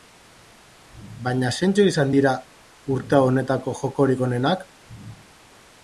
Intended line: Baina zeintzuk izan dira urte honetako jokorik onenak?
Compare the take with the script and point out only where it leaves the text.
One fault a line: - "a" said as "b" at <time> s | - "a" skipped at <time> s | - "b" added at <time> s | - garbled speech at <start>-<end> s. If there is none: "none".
none